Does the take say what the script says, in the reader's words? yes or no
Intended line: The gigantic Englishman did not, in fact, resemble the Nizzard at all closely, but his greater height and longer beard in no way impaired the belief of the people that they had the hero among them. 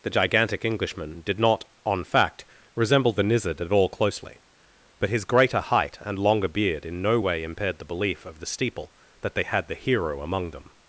no